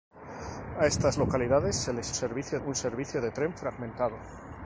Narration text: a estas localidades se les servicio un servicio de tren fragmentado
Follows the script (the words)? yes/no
yes